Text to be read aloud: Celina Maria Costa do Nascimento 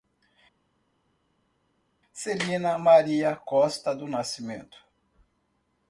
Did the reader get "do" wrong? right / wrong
right